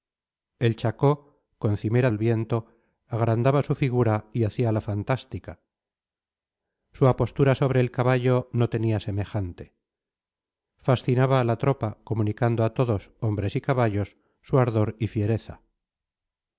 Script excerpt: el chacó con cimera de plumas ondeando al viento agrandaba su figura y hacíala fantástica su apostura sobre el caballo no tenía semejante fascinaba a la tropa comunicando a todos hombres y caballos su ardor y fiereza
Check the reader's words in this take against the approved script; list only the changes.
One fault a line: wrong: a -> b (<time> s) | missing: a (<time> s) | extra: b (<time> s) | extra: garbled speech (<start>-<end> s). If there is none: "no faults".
missing: de plumas ondeando (2.1 s)